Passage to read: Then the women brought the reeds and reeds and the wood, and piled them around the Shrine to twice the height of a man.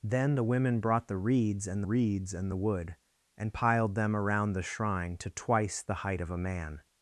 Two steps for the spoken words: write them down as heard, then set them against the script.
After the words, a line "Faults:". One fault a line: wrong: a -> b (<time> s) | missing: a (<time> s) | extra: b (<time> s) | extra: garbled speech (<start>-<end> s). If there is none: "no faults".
Then the women brought the reeds and reeds and the wood, and piled them around the Shrine to twice the height of a man.
Faults:
no faults